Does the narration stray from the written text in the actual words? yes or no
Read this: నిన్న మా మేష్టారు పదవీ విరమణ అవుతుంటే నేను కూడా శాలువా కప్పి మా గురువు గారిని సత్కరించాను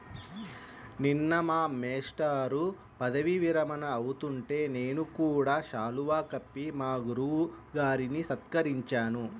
no